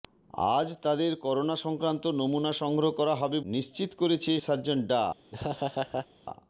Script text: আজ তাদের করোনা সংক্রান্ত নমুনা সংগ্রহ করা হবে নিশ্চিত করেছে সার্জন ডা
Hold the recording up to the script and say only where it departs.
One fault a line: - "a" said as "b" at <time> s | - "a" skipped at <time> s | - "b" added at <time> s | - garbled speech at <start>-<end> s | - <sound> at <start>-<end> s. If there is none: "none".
- laugh at 5.3-6.1 s